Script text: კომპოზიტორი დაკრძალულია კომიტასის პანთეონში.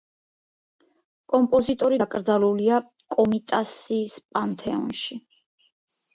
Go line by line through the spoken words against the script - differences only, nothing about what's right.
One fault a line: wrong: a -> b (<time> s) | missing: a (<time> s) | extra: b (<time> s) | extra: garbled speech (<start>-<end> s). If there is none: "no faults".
no faults